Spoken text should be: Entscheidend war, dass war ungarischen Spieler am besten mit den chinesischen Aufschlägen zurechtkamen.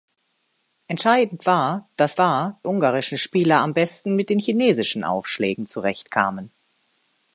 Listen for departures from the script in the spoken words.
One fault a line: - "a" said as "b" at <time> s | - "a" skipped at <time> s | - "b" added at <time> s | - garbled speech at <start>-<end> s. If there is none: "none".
none